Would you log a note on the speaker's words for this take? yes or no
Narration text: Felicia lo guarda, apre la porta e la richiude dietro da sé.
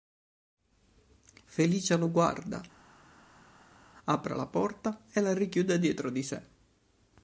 yes